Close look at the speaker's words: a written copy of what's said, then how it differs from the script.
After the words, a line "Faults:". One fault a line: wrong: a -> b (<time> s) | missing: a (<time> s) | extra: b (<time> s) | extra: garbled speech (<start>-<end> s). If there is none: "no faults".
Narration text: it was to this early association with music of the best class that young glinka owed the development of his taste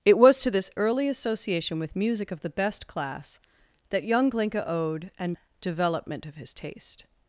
it was to this early association with music of the best class that young glinka owed an development of his taste
Faults:
wrong: the -> an (5.2 s)